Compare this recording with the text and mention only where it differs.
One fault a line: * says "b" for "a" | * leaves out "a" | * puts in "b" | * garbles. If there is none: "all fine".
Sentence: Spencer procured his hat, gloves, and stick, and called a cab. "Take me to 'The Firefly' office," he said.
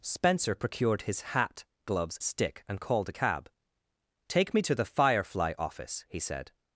* leaves out "and"